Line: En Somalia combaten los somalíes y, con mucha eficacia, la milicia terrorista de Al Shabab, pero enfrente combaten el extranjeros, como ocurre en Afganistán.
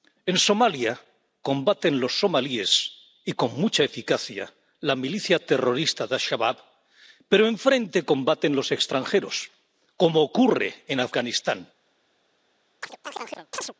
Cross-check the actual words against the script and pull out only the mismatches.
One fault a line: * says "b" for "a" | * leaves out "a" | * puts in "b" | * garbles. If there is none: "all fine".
* says "los" for "el"